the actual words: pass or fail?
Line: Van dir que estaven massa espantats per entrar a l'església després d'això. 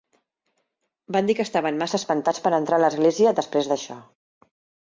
pass